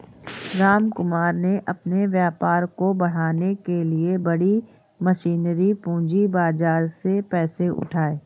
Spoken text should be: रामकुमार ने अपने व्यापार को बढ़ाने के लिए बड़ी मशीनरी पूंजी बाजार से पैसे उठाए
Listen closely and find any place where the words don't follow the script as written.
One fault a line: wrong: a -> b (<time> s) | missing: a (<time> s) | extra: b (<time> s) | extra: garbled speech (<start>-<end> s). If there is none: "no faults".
no faults